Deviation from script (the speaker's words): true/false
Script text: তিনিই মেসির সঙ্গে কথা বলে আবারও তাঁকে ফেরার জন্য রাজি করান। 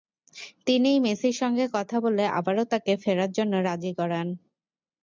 false